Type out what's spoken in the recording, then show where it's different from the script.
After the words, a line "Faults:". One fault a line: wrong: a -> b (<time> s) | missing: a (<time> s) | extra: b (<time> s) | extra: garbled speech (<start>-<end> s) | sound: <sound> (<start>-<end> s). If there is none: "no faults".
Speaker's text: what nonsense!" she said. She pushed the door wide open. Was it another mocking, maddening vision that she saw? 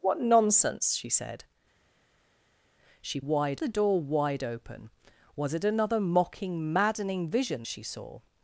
what nonsense!" she said. She wide the door wide open. Was it another mocking, maddening vision she saw?
Faults:
wrong: pushed -> wide (3.2 s)
missing: that (7.6 s)